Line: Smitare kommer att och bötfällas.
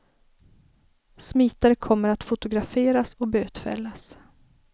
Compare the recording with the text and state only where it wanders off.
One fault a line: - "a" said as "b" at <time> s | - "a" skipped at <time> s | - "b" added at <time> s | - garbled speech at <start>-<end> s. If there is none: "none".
- "fotograferas" added at 2.2 s